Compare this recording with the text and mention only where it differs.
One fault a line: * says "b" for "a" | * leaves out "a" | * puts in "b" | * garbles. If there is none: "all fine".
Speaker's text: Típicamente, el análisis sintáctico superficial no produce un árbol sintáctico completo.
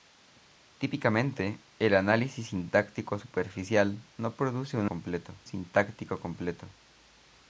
* says "completo" for "árbol"